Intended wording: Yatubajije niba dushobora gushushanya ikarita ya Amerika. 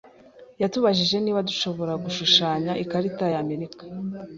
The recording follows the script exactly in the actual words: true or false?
true